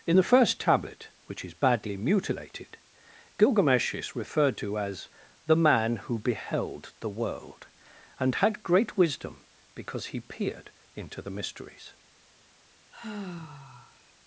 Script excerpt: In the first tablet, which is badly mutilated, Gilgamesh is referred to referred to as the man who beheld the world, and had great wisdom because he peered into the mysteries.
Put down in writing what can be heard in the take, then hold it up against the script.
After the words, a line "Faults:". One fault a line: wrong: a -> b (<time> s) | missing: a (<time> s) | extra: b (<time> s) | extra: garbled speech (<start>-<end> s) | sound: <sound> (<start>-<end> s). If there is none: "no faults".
In the first tablet, which is badly mutilated, Gilgamesh is referred to as the man who beheld the world, and had great wisdom because he peered into the mysteries.
Faults:
missing: referred to (4.8 s)
sound: sigh (12.9-14.1 s)